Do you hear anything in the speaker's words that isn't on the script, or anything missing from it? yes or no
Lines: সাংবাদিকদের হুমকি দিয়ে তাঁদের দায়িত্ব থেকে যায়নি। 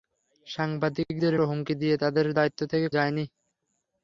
no